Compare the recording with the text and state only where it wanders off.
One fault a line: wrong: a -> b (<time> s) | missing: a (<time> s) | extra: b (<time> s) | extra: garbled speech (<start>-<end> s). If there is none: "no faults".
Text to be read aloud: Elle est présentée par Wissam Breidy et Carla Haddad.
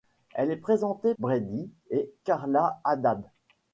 missing: par Wissam (1.1 s)